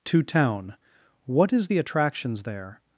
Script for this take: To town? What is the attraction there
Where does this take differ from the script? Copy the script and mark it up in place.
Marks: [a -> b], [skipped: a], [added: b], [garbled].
To town? What is the [attraction -> attractions] there